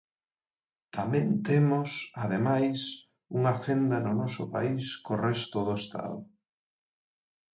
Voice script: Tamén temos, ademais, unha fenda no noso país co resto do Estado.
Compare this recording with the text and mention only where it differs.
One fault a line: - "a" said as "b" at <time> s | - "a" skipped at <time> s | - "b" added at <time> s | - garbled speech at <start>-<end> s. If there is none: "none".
none